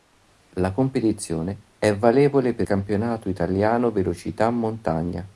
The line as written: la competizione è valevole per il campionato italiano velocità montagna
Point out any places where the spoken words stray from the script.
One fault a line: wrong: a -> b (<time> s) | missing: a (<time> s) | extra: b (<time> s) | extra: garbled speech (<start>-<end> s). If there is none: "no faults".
missing: il (2.7 s)